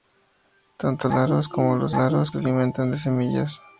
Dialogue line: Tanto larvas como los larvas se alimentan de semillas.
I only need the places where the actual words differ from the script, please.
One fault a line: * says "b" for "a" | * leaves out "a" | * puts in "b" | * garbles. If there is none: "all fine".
all fine